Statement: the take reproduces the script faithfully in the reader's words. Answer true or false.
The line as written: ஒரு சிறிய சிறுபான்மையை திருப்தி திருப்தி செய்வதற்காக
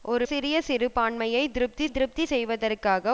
true